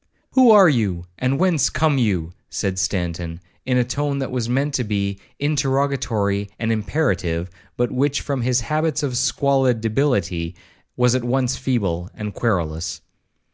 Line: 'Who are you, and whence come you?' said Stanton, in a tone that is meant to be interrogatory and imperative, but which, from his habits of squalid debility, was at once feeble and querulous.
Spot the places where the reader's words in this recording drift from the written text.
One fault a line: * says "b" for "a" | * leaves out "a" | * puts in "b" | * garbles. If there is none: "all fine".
* says "was" for "is"